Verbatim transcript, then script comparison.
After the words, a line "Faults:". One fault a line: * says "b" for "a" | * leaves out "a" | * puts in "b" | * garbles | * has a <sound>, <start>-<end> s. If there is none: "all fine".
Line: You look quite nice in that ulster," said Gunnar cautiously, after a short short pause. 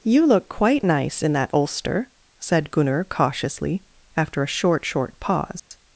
You look quite nice in that ulster," said Gunnar cautiously, after a short short pause.
Faults:
* has a dropout, 5.6-5.7 s